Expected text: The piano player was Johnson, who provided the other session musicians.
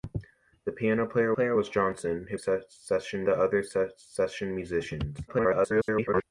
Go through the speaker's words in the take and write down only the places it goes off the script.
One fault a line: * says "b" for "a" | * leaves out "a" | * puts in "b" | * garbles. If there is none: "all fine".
* puts in "player"
* says "session" for "provided"
* garbles